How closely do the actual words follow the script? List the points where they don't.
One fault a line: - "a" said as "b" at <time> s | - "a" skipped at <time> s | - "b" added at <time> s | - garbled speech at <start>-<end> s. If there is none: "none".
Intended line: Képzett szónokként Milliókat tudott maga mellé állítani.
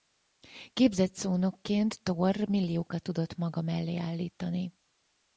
- "Thor" added at 2.0 s